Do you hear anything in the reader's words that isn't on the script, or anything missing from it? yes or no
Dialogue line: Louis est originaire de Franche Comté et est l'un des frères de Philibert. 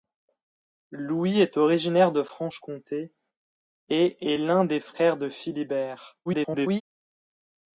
yes